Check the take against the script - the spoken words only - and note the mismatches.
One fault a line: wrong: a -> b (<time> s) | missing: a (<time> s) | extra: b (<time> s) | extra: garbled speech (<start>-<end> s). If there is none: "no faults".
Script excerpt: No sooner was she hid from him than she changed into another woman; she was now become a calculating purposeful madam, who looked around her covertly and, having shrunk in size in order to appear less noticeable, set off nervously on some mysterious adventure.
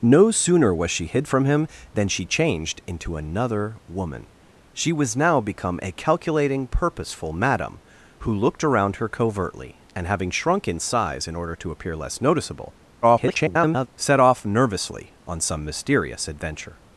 extra: garbled speech (13.0-13.9 s)